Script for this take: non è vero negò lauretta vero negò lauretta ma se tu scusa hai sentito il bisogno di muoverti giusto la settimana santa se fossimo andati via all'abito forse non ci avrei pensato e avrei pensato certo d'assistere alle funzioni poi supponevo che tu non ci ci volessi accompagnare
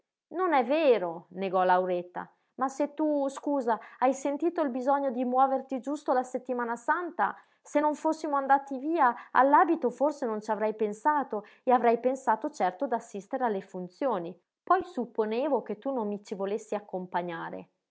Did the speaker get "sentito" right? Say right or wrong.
right